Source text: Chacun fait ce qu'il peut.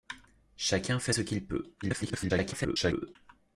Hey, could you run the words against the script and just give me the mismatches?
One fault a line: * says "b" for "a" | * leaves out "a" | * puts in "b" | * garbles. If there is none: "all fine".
* garbles